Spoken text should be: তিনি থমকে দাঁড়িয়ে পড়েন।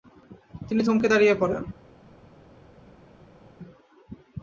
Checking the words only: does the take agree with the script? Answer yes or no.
yes